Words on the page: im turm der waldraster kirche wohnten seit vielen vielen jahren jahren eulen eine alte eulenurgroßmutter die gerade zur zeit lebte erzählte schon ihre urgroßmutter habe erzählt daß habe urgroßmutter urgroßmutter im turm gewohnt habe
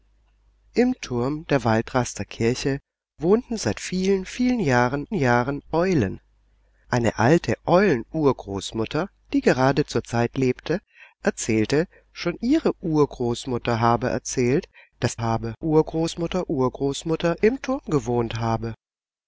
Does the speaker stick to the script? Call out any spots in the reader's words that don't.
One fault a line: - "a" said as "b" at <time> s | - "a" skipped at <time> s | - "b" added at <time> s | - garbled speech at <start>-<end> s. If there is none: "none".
none